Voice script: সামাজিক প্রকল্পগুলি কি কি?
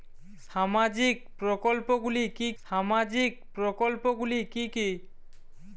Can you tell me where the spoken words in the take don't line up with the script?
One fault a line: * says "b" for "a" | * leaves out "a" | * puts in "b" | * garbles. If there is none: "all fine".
* puts in "সামাজিক প্রকল্পগুলি কি"